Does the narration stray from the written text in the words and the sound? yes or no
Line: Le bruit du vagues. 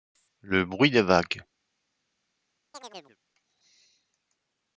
yes